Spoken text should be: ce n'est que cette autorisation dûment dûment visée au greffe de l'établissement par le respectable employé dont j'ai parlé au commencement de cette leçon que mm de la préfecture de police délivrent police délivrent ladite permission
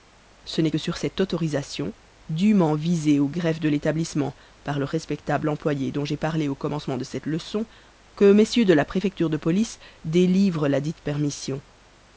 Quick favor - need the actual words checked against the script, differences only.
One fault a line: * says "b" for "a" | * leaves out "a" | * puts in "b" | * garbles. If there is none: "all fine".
* puts in "sur"
* leaves out "dûment"
* leaves out "police délivrent"